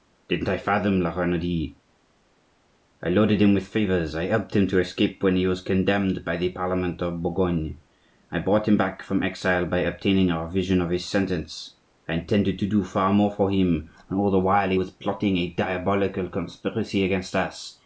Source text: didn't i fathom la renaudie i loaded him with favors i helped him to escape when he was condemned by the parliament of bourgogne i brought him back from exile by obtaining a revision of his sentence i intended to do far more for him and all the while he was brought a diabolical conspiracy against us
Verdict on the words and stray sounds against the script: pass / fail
fail